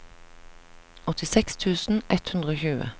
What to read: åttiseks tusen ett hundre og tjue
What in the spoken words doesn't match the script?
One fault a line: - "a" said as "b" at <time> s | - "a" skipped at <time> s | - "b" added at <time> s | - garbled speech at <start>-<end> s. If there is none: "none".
none